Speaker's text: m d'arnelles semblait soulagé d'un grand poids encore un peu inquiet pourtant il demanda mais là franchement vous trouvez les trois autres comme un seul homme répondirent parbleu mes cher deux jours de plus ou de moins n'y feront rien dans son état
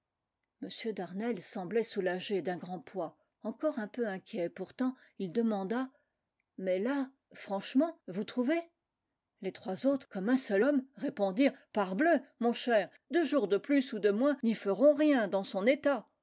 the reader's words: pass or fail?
fail